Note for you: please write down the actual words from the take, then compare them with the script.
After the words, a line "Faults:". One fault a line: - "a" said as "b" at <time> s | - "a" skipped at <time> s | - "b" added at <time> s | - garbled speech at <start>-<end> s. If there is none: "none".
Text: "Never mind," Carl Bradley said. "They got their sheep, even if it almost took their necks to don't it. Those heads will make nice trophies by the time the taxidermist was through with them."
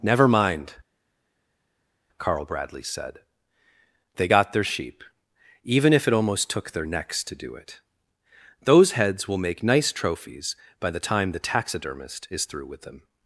"Never mind," Carl Bradley said. "They got their sheep, even if it almost took their necks to do it. Those heads will make nice trophies by the time the taxidermist is through with them."
Faults:
- "don't" said as "do" at 7.3 s
- "was" said as "is" at 12.3 s